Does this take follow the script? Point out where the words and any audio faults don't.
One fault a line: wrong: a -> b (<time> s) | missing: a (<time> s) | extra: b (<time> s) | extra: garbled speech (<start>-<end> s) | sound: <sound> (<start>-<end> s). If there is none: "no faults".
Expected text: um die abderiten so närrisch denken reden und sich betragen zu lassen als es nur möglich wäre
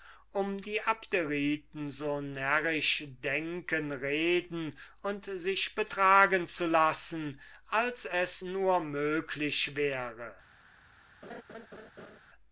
sound: laugh (11.2-12.2 s)